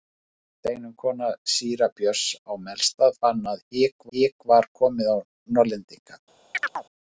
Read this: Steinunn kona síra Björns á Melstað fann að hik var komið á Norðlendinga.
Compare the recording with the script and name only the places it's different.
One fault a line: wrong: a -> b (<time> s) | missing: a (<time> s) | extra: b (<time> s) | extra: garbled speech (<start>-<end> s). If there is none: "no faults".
extra: hik (4.2 s)